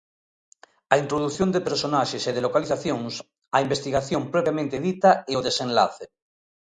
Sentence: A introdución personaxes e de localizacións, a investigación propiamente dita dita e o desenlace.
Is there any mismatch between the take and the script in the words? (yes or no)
yes